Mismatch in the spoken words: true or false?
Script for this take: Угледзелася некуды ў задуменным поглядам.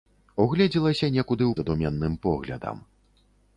false